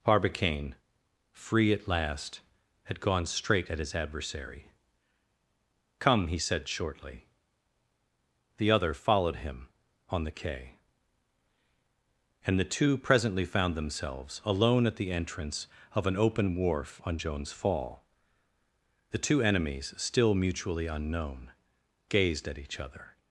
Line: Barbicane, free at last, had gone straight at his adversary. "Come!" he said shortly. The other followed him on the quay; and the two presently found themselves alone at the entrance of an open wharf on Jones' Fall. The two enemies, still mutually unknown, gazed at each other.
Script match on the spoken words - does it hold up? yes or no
yes